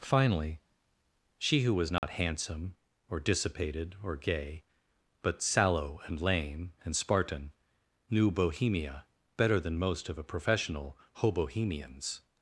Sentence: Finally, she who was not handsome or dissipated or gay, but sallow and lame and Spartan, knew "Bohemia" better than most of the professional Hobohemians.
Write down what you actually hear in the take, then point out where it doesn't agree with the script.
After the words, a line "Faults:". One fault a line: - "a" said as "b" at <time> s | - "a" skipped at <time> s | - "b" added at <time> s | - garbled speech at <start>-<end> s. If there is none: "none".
Finally, she who was not handsome or dissipated or gay, but sallow and lame and Spartan, knew "Bohemia" better than most of a professional Hobohemians.
Faults:
- "the" said as "a" at 10.2 s